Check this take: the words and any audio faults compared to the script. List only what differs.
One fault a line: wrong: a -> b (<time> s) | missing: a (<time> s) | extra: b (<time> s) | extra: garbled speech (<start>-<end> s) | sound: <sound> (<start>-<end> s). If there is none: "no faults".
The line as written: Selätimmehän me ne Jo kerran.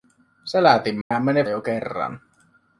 sound: dropout (1.0-1.1 s)